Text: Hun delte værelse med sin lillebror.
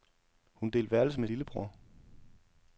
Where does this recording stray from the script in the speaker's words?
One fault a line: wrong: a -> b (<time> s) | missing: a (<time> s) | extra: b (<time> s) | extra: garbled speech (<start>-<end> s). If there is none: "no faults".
missing: sin (1.3 s)